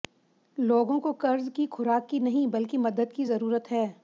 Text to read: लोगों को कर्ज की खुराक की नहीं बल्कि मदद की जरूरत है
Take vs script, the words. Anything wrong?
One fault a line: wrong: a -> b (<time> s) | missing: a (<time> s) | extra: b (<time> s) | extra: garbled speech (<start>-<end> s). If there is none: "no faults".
no faults